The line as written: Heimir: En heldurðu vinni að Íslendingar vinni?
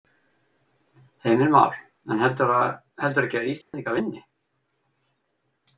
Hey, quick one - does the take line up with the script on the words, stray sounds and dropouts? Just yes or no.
no